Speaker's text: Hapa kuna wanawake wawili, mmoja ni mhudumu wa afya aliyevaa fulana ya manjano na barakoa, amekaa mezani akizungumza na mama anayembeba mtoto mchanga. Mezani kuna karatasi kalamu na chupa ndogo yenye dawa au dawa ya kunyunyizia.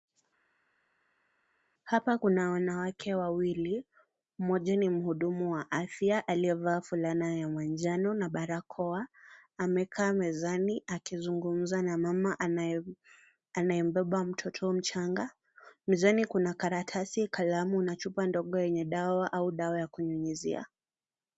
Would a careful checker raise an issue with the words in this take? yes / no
no